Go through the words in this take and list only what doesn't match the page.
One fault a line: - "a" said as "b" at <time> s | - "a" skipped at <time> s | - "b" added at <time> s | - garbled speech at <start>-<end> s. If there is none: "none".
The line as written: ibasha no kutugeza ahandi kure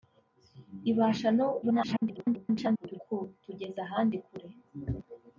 - garbled speech at 1.6-3.0 s